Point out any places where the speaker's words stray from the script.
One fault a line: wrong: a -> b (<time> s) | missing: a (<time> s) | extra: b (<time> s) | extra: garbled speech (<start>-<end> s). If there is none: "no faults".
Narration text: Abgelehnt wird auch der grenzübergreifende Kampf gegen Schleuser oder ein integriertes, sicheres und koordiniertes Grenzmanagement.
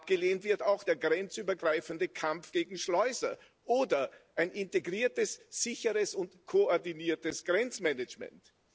no faults